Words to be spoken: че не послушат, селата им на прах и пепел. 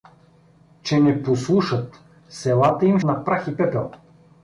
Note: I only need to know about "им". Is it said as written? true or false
true